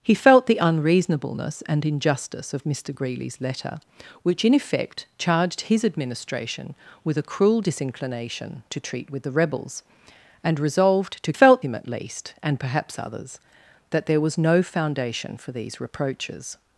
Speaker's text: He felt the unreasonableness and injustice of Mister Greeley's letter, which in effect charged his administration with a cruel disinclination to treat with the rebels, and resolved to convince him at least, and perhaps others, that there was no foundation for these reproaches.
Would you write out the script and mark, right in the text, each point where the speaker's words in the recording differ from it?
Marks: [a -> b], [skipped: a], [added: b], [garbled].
He felt the unreasonableness and injustice of Mister Greeley's letter, which in effect charged his administration with a cruel disinclination to treat with the rebels, and resolved to [convince -> felt] him at least, and perhaps others, that there was no foundation for these reproaches.